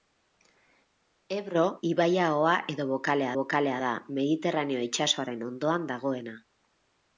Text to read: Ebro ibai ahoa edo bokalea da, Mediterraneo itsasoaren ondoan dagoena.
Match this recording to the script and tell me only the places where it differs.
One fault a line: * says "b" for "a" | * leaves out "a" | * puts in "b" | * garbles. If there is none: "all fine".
* puts in "bokalea"